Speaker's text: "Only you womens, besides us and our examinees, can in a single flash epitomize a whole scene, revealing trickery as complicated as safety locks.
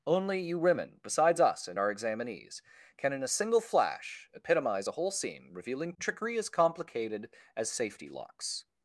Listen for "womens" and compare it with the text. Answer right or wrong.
wrong